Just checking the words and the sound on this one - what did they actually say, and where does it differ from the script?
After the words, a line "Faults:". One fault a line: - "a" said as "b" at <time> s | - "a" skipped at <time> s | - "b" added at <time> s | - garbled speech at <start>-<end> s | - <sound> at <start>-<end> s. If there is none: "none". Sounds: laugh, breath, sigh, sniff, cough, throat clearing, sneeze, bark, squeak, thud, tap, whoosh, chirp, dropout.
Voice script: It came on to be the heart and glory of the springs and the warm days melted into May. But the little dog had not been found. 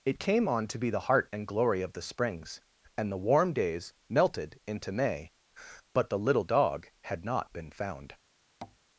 It came on to be the heart and glory of the springs and the warm days melted into May. But the little dog had not been found.
Faults:
- tap at 8.6-8.8 s